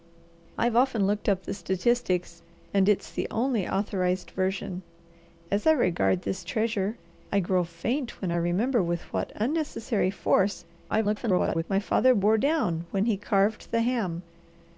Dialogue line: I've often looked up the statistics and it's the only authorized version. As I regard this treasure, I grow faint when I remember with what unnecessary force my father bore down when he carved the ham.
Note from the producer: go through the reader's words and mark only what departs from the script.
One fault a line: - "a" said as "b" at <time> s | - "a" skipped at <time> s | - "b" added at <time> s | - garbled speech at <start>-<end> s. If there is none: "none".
- garbled speech at 10.9-11.6 s